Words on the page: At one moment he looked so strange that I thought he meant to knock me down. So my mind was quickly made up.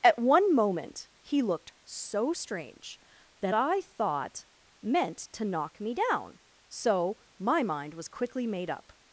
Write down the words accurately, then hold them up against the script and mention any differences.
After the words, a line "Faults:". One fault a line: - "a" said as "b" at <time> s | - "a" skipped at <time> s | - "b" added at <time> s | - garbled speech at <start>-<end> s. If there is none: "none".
At one moment he looked so strange that I thought meant to knock me down. So my mind was quickly made up.
Faults:
- "he" skipped at 4.4 s